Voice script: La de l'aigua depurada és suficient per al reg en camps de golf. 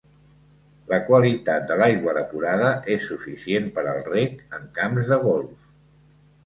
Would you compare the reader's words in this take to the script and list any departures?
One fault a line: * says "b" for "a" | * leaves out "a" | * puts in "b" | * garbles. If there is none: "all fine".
* puts in "qualitat"